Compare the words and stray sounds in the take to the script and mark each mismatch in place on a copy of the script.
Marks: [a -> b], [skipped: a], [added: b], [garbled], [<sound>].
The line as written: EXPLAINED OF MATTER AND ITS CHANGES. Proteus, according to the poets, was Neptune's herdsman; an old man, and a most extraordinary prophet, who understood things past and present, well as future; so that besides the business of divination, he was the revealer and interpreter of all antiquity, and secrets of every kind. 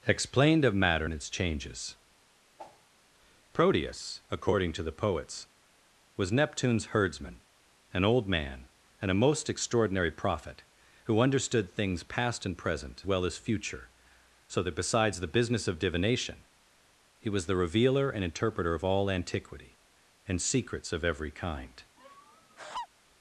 EXPLAINED OF MATTER AND ITS CHANGES. [whoosh] Proteus, according to the poets, was Neptune's herdsman; an old man, and a most extraordinary prophet, who understood things past and present, well as future; so that besides the business of divination, he was the revealer and interpreter of all antiquity, and secrets of every kind. [laugh]